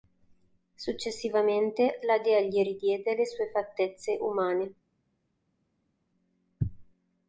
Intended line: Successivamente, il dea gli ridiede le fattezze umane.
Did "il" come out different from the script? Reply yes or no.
yes